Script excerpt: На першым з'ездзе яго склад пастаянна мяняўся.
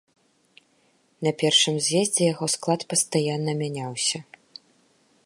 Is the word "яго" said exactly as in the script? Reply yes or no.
yes